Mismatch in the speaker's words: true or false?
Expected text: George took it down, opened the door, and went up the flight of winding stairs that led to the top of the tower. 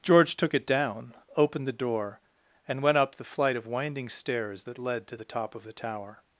false